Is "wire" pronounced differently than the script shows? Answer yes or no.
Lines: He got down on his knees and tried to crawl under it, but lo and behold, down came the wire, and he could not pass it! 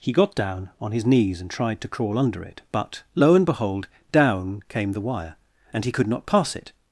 no